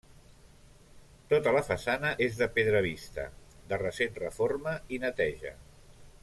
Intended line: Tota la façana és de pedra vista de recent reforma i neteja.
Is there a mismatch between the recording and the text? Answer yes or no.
no